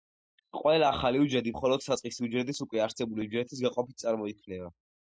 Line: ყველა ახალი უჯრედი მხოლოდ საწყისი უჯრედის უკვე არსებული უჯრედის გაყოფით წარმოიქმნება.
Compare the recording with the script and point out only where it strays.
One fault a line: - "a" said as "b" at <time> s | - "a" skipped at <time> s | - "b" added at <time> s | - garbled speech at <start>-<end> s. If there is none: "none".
none